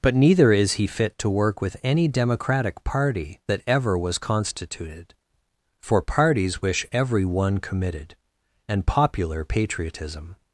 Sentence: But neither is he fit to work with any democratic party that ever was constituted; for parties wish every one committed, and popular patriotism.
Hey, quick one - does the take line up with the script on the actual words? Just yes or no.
yes